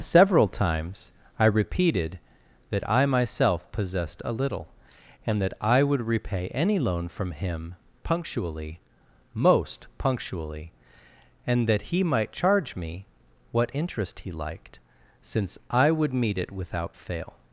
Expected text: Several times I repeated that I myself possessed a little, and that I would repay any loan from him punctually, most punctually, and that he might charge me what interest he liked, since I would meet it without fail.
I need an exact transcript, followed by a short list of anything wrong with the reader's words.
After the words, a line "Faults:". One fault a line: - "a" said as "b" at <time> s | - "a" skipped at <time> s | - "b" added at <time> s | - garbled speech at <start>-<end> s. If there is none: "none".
Several times I repeated that I myself possessed a little, and that I would repay any loan from him punctually, most punctually, and that he might charge me what interest he liked, since I would meet it without fail.
Faults:
none